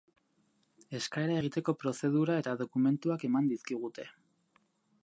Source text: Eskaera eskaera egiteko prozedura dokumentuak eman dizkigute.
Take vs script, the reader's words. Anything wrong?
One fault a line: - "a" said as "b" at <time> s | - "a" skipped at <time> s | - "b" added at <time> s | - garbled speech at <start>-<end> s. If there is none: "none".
- "eskaera" skipped at 1.4 s
- "eta" added at 2.4 s